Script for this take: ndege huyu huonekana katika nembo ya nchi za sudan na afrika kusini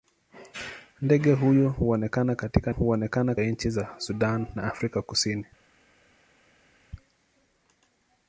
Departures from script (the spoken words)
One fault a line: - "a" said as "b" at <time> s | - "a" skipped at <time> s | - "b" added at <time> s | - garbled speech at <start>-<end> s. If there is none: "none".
- "nembo" said as "huonekana" at 2.7 s